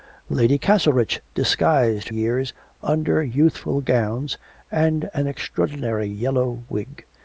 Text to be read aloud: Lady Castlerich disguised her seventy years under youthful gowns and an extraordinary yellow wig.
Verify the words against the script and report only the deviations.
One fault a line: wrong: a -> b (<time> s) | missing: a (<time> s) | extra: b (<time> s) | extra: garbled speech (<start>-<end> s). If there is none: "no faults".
missing: her seventy (2.1 s)